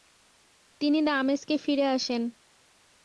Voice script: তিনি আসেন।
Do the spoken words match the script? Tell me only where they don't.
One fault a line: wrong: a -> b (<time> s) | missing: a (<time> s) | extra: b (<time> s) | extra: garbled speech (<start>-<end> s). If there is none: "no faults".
extra: দামেস্কে ফিরে (1.0 s)